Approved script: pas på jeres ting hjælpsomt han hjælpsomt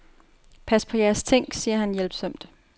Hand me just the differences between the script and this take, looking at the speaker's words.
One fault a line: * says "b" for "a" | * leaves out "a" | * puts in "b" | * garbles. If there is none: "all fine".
* says "siger" for "hjælpsomt"